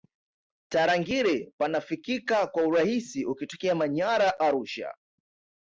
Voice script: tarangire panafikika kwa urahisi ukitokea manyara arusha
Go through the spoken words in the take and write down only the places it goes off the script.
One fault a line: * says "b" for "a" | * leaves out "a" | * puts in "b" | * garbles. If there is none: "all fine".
all fine